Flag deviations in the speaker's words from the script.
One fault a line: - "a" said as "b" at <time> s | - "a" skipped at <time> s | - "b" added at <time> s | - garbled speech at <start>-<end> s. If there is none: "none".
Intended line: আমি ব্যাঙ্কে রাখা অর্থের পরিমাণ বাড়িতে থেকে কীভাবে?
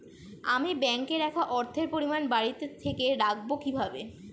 - "দেখব" added at 3.2 s